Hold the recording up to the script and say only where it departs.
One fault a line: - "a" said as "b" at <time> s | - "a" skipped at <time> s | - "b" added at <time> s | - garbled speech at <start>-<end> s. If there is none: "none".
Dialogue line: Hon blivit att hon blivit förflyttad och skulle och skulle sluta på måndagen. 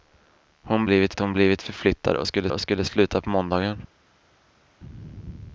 none